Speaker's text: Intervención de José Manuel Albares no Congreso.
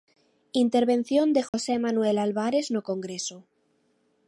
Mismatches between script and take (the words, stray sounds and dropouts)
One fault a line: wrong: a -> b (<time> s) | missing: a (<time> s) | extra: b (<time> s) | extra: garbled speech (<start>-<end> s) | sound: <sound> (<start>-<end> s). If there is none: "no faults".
sound: dropout (1.5-1.5 s)